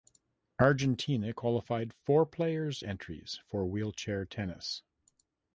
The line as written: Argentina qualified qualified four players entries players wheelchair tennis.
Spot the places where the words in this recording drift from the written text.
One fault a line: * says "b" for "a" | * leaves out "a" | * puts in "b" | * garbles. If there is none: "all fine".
* leaves out "qualified"
* says "for" for "players"